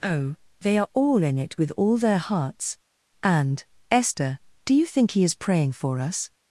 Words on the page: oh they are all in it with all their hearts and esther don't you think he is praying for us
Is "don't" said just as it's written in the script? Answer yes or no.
no